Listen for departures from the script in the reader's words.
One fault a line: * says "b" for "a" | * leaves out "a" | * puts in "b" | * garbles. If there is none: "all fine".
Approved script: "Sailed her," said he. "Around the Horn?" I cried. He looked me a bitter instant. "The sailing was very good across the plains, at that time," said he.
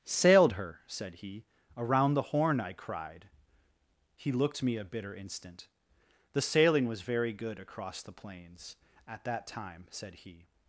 all fine